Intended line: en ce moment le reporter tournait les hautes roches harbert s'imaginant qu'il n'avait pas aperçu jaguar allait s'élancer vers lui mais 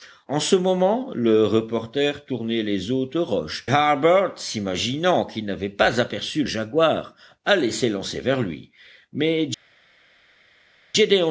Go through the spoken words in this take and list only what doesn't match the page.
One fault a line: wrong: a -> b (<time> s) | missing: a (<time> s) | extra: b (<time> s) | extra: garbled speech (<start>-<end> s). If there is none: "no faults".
no faults